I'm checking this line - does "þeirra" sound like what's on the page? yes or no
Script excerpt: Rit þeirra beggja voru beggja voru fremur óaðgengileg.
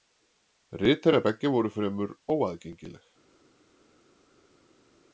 yes